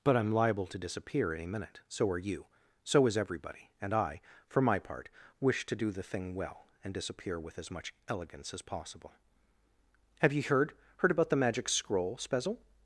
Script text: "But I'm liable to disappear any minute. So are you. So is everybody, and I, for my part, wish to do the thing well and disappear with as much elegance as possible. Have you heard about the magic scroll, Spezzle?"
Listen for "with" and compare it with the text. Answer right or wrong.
right